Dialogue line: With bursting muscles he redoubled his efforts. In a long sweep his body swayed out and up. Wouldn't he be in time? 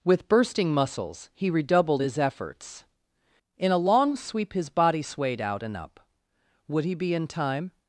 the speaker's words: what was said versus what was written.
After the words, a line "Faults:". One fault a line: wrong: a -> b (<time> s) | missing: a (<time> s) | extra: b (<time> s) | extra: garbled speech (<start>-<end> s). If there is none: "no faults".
With bursting muscles he redoubled his efforts. In a long sweep his body swayed out and up. Would he be in time?
Faults:
wrong: Wouldn't -> Would (6.7 s)